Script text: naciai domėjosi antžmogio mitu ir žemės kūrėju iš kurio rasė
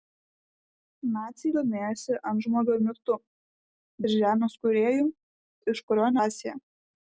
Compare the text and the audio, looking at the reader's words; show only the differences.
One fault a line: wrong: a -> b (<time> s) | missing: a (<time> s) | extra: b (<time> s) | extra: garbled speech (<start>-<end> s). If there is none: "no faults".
no faults